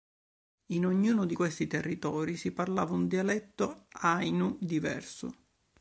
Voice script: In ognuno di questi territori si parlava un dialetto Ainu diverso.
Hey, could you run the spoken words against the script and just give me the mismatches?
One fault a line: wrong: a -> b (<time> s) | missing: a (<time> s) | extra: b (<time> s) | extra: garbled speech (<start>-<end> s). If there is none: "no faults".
no faults